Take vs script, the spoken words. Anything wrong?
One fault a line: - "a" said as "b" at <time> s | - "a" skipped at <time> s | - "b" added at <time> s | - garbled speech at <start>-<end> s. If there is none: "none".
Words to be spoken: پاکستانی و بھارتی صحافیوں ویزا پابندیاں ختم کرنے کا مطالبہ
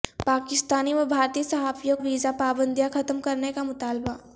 none